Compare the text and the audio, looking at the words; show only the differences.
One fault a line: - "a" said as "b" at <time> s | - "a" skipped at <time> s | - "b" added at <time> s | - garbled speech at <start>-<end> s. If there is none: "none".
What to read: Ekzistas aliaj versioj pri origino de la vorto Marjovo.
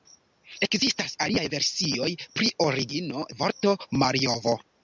- "de" skipped at 3.2 s